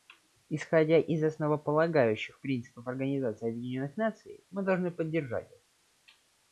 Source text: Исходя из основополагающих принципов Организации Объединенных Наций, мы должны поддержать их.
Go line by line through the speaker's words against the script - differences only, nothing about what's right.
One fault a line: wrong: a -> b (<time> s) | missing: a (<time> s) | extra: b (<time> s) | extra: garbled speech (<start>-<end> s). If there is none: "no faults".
no faults